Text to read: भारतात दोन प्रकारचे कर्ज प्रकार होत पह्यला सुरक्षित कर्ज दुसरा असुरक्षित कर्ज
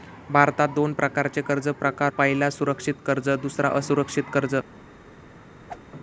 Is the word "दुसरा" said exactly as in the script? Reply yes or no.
yes